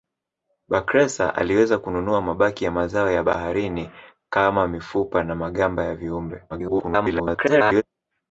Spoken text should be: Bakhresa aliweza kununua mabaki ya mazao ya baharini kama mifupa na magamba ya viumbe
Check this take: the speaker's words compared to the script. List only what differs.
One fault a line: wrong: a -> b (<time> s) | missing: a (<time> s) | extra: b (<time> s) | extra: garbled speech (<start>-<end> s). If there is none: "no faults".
extra: garbled speech (6.5-7.8 s)